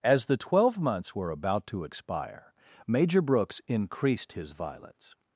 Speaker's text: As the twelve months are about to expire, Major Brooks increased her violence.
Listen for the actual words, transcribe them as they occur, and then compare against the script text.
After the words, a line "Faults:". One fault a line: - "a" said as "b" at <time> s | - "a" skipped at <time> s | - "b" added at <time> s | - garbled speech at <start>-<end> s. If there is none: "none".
As the twelve months were about to expire, Major Brooks increased his violence.
Faults:
- "are" said as "were" at 1.1 s
- "her" said as "his" at 4.3 s